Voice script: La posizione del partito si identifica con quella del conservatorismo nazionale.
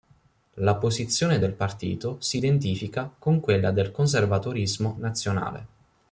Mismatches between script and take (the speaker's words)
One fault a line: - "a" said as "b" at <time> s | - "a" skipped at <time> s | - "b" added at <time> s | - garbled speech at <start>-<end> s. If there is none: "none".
none